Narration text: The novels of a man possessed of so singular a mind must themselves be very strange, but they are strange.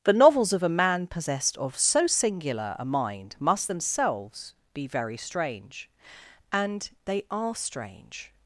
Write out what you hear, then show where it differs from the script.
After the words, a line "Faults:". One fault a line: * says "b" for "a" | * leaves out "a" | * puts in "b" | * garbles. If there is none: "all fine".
The novels of a man possessed of so singular a mind must themselves be very strange, and they are strange.
Faults:
* says "and" for "but"